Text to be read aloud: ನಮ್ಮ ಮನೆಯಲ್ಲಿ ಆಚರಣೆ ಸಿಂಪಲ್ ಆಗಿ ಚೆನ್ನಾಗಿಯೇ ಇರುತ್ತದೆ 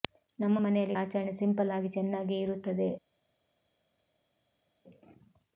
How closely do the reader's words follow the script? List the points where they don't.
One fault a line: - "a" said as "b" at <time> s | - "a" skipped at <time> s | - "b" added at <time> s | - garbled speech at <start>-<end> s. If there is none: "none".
none